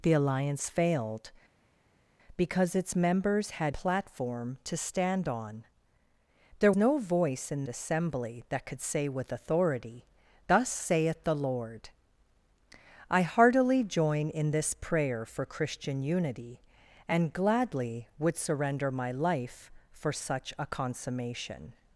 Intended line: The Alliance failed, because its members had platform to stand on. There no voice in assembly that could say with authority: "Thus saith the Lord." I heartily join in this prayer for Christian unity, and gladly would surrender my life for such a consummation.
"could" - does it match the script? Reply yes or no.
yes